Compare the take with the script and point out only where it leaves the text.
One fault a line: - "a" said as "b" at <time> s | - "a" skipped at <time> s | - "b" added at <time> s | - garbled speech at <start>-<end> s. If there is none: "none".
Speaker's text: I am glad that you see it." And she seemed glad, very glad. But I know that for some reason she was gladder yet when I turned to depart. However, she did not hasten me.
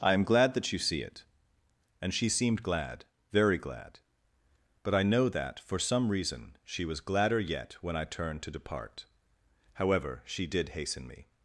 - "not" skipped at 10.7 s